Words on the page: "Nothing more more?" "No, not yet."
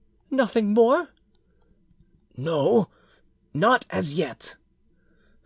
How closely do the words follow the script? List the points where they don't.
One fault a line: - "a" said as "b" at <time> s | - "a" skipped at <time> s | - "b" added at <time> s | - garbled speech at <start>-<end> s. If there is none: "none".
- "more" skipped at 1.1 s
- "as" added at 3.9 s